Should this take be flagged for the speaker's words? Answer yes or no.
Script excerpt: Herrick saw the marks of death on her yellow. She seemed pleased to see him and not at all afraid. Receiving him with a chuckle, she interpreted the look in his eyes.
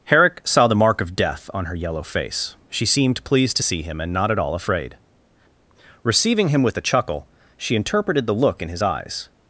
yes